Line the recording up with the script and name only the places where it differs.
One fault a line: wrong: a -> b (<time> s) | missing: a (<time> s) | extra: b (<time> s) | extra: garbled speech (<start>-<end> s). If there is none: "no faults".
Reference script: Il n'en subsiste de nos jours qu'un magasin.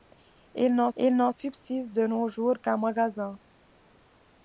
extra: il n'en (1.0 s)